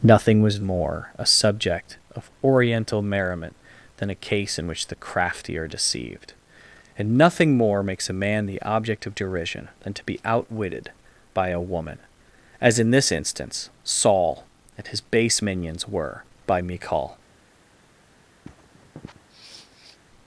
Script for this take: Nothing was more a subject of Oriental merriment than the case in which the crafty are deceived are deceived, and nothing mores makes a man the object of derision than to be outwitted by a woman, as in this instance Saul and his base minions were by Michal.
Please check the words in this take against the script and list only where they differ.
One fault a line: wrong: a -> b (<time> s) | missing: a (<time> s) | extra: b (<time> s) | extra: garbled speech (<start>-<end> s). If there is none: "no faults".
wrong: the -> a (4.1 s)
missing: are deceived (6.3 s)
wrong: mores -> more (7.6 s)